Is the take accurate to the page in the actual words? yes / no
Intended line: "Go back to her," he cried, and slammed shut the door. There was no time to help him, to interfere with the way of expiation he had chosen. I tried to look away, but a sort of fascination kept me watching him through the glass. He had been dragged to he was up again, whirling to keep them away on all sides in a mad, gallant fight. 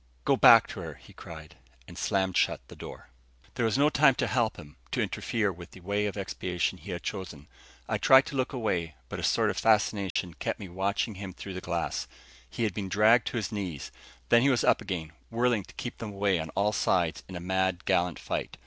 no